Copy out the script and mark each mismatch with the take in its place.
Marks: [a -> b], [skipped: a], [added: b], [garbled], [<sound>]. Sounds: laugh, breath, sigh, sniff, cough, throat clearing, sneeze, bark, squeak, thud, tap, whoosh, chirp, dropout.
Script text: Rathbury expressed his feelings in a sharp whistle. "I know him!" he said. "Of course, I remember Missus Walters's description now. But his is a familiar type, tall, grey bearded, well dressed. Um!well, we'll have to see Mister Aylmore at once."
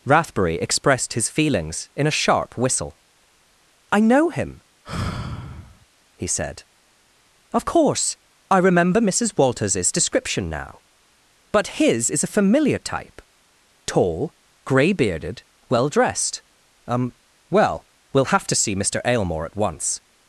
Rathbury expressed his feelings in a sharp whistle. "I know him!" [sigh] he said. "Of course, I remember Missus Walters's description now. But his is a familiar type, tall, grey bearded, well dressed. Um!well, we'll have to see Mister Aylmore at once."